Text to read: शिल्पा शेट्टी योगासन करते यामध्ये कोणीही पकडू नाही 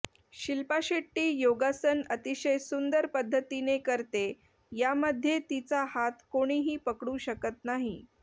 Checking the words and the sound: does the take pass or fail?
fail